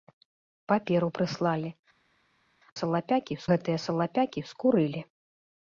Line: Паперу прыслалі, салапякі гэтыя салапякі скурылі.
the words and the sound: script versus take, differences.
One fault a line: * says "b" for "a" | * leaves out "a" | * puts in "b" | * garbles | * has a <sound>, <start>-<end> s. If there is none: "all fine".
all fine